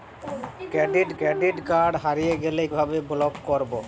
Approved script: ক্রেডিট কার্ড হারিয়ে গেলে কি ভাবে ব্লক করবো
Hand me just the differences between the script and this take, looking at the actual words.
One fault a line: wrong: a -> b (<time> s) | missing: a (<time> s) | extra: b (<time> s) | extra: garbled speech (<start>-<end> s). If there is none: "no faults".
extra: ক্রেডিট (1.2 s)
missing: কি (2.6 s)